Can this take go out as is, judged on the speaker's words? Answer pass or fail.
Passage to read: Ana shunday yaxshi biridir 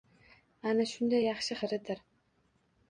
pass